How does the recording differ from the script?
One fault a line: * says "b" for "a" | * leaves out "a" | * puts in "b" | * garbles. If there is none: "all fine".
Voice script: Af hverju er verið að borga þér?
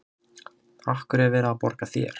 all fine